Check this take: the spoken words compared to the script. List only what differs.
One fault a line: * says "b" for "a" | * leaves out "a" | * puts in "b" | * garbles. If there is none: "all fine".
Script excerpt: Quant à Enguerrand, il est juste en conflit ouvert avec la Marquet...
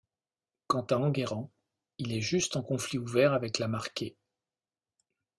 all fine